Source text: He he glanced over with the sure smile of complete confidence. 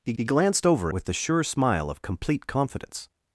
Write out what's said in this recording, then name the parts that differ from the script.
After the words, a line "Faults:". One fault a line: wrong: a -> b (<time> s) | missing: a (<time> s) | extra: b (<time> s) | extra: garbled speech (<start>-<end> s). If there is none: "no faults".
He he glanced over with the sure smile of complete confidence.
Faults:
no faults